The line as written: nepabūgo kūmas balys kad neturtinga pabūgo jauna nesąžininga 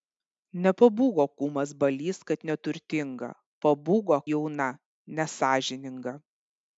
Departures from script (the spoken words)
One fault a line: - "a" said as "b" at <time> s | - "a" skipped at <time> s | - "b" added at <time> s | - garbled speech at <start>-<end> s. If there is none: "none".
none